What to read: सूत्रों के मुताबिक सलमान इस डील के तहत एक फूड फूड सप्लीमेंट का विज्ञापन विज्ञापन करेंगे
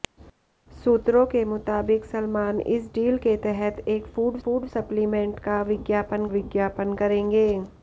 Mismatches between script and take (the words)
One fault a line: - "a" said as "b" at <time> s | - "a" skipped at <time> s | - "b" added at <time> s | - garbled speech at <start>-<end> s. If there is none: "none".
none